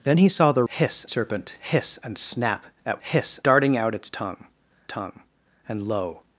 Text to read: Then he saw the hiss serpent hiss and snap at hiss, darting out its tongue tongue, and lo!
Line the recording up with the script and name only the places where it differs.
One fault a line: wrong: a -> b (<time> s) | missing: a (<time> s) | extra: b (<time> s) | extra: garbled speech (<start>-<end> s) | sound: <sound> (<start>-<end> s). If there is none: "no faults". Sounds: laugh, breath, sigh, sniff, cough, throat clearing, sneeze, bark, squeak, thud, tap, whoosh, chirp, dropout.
no faults